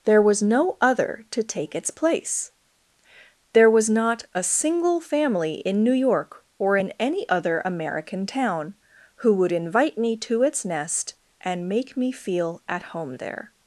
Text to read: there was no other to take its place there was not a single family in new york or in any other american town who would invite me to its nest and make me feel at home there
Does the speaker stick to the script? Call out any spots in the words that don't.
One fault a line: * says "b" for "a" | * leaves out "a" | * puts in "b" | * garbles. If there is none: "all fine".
all fine